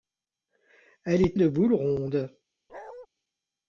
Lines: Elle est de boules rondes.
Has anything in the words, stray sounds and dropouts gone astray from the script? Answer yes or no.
yes